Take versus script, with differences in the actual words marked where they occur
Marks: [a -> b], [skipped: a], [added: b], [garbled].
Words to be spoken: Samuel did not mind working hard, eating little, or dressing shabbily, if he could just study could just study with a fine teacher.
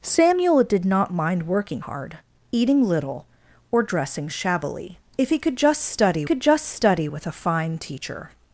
Samuel did not mind working hard, eating little, or dressing shabbily, if he could just study could just study with a fine teacher.